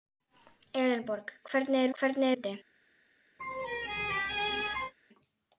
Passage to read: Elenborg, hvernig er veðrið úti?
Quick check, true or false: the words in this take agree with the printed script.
false